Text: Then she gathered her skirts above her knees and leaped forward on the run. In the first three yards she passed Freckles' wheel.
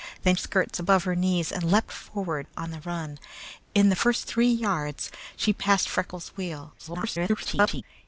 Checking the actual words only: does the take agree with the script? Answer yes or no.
no